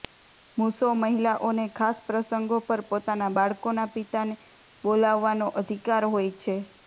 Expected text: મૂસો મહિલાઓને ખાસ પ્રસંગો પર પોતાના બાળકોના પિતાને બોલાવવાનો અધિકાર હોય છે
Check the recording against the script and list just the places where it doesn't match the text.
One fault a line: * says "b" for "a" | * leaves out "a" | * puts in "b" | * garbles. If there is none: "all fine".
all fine